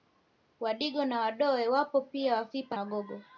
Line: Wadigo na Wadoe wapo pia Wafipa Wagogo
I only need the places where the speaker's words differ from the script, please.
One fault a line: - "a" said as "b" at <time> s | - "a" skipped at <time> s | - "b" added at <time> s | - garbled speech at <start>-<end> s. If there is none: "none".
none